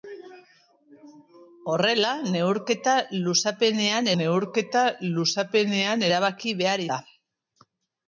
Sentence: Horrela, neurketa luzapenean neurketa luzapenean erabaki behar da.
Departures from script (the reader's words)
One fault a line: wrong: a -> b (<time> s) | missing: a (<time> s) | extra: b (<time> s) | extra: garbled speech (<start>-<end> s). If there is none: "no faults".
no faults